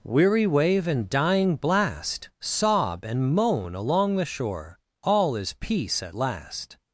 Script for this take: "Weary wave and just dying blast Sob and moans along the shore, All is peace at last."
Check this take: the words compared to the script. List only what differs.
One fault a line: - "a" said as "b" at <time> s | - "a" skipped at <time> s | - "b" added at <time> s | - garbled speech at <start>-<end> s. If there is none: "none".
- "just" skipped at 1.1 s
- "moans" said as "moan" at 3.4 s